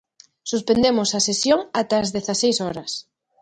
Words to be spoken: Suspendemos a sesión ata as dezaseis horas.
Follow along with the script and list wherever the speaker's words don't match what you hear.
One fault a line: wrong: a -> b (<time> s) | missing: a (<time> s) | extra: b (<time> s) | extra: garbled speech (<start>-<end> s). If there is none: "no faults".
no faults